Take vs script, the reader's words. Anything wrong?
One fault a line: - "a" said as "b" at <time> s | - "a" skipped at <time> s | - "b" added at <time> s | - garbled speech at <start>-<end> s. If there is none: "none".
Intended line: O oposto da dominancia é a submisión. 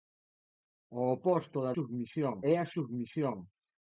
- "dominancia" said as "submisión" at 1.7 s